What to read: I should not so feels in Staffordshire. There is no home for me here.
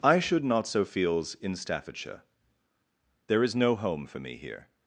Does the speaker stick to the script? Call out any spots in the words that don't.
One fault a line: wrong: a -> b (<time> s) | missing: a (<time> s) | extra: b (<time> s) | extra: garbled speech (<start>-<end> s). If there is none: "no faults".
no faults